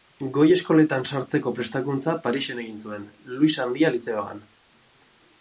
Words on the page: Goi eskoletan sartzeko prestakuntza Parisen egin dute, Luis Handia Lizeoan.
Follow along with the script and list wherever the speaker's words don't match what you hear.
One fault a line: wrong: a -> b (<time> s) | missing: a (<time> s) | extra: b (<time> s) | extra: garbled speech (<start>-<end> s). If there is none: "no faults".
wrong: dute -> zuen (2.9 s)